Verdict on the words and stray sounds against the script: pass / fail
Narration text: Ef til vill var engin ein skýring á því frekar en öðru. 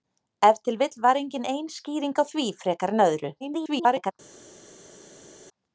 fail